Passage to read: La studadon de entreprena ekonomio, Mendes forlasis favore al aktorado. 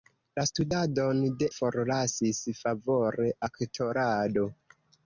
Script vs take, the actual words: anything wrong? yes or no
yes